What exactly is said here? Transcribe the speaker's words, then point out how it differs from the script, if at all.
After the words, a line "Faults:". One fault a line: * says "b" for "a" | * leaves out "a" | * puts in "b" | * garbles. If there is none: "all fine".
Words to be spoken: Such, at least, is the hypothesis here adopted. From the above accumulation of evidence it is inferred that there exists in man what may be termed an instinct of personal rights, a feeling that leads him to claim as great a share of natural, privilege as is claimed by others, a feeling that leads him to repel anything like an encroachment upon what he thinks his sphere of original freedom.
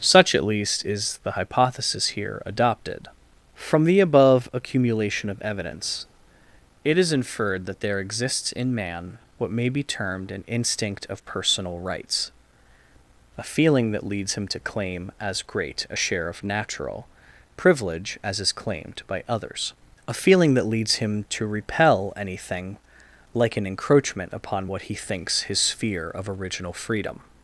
Such, at least, is the hypothesis here adopted. From the above accumulation of evidence it is inferred that there exists in man what may be termed an instinct of personal rights, a feeling that leads him to claim as great a share of natural, privilege as is claimed by others, a feeling that leads him to repel anything like an encroachment upon what he thinks his sphere of original freedom.
Faults:
all fine